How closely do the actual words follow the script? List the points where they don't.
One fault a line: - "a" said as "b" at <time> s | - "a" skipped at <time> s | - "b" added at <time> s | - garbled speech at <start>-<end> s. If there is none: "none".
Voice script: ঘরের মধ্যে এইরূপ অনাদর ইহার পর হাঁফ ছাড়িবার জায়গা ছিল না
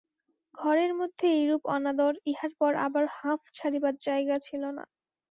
- "আবার" added at 2.8 s